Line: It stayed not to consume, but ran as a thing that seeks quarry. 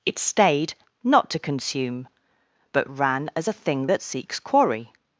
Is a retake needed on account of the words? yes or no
no